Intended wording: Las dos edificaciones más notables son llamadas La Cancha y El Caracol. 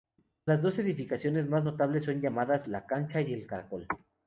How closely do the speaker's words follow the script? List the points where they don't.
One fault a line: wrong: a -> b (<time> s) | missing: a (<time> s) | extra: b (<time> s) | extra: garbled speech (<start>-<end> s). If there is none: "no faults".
no faults